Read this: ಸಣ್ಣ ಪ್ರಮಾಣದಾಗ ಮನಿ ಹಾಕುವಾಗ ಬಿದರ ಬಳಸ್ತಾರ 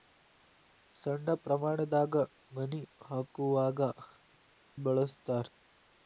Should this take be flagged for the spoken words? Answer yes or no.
yes